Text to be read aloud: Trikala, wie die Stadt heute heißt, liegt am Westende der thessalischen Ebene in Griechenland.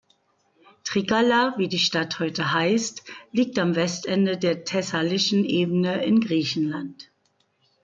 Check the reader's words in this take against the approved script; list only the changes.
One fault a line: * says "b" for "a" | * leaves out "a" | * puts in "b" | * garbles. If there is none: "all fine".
all fine